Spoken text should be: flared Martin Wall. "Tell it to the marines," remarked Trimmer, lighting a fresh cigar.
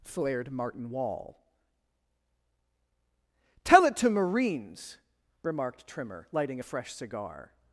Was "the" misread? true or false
true